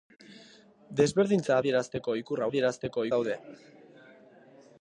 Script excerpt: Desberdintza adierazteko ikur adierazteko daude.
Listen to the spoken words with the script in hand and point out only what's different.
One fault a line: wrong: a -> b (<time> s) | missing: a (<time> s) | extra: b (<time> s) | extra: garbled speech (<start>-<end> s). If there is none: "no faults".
no faults